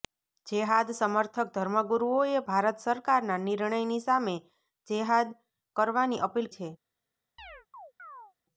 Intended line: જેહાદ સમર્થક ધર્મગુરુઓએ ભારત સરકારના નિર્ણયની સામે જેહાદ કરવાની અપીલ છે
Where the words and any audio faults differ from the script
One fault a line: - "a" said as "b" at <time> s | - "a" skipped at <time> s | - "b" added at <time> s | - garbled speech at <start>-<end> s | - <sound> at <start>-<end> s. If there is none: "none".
- chirp at 7.4-8.3 s